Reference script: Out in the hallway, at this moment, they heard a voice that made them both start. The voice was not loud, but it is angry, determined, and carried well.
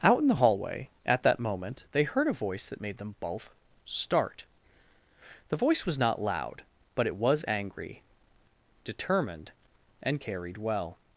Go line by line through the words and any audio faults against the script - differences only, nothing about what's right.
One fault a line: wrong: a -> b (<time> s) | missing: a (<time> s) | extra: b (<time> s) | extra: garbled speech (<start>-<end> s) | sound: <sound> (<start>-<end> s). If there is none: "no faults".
wrong: this -> that (1.2 s)
wrong: is -> was (7.2 s)